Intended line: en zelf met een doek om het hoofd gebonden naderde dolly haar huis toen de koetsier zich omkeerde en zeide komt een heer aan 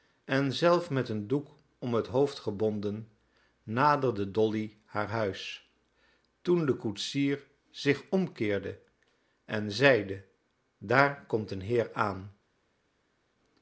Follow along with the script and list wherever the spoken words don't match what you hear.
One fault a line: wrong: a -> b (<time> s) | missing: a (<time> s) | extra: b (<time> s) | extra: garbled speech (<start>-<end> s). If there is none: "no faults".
extra: daar (10.8 s)